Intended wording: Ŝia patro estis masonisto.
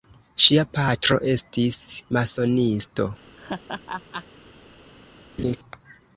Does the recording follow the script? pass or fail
pass